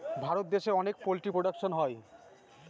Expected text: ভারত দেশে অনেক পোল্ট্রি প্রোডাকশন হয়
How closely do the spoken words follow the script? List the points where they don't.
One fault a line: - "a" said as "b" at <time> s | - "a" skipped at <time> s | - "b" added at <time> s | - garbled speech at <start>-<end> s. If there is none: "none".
none